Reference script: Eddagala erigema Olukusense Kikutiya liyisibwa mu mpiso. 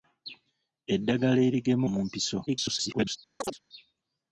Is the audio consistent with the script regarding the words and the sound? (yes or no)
no